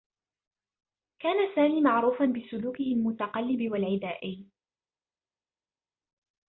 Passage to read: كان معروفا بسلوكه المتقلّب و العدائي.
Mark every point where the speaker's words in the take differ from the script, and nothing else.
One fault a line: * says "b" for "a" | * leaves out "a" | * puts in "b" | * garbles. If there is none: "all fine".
* puts in "سامي"